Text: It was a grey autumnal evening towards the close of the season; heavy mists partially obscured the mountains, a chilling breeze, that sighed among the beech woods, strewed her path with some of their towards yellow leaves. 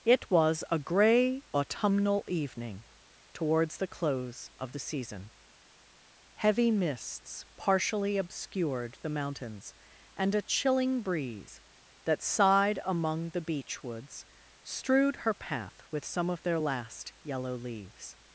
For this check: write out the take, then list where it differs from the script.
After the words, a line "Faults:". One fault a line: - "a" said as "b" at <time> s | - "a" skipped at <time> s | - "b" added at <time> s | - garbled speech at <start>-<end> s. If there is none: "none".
It was a grey autumnal evening towards the close of the season; heavy mists partially obscured the mountains, and a chilling breeze, that sighed among the beech woods, strewed her path with some of their last yellow leaves.
Faults:
- "and" added at 10.1 s
- "towards" said as "last" at 16.6 s